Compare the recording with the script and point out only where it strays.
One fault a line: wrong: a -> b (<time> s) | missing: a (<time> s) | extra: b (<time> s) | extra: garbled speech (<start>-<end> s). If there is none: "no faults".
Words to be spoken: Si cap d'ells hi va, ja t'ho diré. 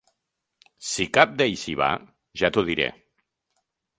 no faults